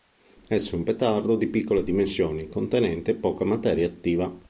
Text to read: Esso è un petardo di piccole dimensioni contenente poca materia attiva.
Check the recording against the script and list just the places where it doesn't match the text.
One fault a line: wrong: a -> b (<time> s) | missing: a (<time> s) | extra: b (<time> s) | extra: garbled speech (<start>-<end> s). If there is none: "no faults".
no faults